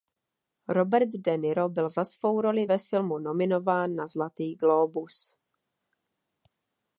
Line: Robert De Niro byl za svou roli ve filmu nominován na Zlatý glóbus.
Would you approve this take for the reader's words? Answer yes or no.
yes